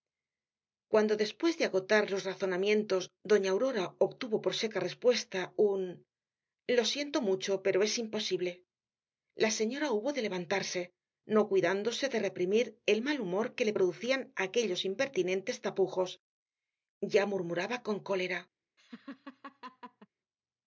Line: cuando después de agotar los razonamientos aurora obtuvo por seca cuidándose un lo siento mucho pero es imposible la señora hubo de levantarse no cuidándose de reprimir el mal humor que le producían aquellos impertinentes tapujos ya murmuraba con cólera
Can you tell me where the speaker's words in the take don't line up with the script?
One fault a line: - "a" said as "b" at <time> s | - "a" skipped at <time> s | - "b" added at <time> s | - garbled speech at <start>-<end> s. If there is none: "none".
- "doña" added at 3.3 s
- "cuidándose" said as "respuesta" at 4.9 s